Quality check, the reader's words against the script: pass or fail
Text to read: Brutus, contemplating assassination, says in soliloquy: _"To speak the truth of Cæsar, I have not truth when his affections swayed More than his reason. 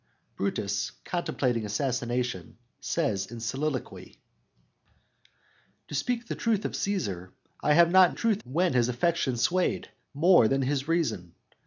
pass